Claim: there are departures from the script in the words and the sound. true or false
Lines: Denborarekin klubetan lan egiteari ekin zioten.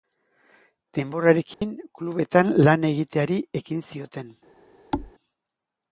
true